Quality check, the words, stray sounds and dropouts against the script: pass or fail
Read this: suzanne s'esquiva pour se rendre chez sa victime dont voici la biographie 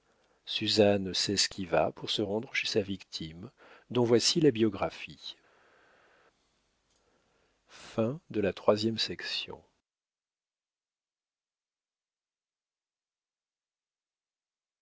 pass